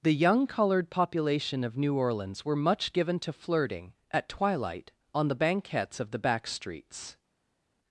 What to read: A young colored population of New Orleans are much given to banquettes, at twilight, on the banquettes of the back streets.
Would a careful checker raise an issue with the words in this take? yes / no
yes